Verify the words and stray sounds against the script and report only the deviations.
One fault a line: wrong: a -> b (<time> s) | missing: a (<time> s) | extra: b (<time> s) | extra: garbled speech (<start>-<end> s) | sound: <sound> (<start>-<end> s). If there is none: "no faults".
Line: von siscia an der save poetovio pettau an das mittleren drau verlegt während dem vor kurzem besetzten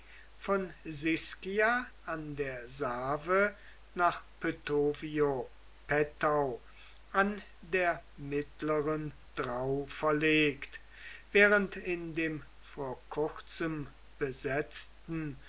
extra: nach (3.9 s)
wrong: das -> der (7.6 s)
extra: in (11.7 s)